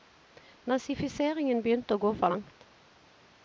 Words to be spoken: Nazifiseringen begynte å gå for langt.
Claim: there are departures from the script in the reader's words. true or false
false